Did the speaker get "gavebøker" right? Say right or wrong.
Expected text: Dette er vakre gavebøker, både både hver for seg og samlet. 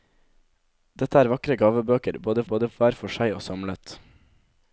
right